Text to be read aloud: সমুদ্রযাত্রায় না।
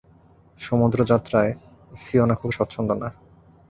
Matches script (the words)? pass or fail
fail